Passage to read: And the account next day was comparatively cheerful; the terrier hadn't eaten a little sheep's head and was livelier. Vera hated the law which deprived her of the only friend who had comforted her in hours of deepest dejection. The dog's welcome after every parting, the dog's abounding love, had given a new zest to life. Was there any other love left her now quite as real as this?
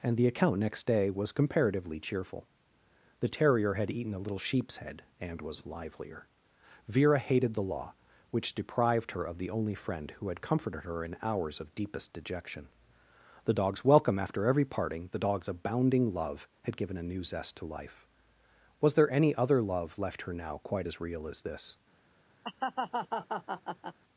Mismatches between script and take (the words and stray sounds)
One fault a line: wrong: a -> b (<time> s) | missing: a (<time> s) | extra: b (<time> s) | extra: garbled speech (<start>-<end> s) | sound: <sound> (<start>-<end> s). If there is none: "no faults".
wrong: hadn't -> had (3.8 s)
sound: laugh (22.4-24.0 s)